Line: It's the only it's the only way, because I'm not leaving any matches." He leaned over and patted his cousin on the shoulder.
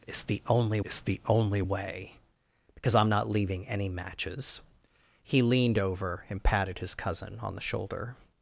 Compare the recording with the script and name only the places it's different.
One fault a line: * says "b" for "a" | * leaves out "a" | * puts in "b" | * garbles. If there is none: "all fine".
all fine